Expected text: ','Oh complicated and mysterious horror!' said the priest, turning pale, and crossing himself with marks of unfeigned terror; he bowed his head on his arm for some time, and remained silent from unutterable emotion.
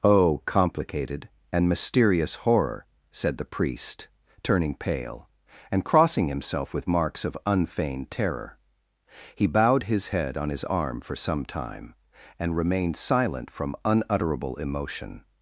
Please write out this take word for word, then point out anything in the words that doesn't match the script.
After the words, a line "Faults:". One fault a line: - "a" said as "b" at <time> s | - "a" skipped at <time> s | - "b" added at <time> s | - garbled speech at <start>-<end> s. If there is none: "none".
','Oh complicated and mysterious horror!' said the priest, turning pale, and crossing himself with marks of unfeigned terror; he bowed his head on his arm for some time, and remained silent from unutterable emotion.
Faults:
none